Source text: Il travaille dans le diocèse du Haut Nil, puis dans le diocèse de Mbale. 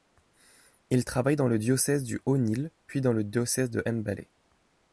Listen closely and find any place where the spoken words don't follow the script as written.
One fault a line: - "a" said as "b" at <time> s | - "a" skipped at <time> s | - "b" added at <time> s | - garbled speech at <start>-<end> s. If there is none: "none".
none